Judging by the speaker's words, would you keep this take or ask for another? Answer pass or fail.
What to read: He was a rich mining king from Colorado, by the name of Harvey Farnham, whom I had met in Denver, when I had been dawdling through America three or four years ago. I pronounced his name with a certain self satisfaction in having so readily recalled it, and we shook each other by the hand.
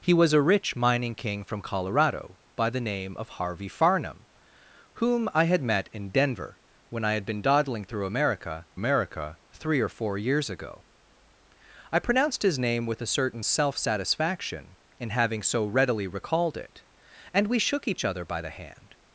fail